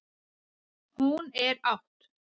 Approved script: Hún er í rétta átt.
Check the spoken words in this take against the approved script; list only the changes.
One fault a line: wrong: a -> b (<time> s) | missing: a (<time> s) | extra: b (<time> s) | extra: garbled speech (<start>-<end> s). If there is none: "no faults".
missing: í rétta (1.6 s)